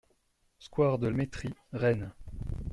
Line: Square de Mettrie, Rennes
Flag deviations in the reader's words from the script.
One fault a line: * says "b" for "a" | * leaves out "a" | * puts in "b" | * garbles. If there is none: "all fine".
all fine